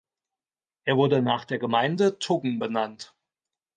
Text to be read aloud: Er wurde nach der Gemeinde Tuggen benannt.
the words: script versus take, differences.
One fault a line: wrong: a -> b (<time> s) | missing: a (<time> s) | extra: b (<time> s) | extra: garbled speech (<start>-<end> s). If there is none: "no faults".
no faults